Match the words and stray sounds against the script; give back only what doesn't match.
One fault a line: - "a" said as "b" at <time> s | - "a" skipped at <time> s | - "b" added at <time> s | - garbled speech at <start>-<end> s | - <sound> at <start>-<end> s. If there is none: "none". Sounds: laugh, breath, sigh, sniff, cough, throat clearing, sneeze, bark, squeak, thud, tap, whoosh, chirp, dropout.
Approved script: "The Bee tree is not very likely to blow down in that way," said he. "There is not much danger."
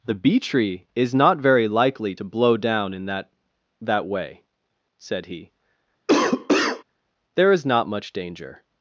- "that" added at 3.8 s
- cough at 6.1-6.8 s